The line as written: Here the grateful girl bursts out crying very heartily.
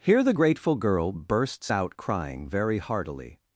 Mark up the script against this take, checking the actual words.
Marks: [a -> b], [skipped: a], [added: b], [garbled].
Here the grateful girl bursts out crying very heartily.